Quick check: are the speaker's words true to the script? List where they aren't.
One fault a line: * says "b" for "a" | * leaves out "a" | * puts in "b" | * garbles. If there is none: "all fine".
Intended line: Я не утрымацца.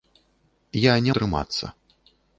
all fine